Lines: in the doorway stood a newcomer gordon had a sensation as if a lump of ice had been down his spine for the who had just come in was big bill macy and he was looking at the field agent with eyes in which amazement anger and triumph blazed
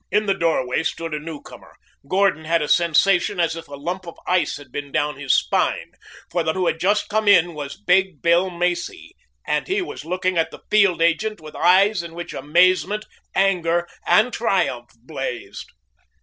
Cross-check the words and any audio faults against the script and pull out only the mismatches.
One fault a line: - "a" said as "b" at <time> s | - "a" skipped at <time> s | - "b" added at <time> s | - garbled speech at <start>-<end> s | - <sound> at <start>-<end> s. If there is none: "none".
none